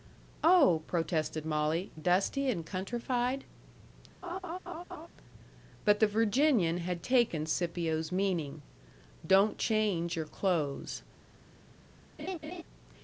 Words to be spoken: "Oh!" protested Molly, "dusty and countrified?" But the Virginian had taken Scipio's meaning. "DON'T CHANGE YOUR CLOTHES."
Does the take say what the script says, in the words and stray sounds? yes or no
no